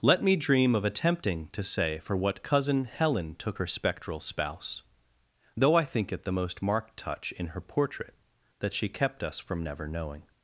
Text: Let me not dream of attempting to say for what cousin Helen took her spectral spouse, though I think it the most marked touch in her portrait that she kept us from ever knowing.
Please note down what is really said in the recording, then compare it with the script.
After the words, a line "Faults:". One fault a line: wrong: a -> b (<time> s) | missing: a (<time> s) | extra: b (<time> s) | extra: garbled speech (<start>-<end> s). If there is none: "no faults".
Let me dream of attempting to say for what cousin Helen took her spectral spouse, though I think it the most marked touch in her portrait that she kept us from never knowing.
Faults:
missing: not (0.3 s)
wrong: ever -> never (9.6 s)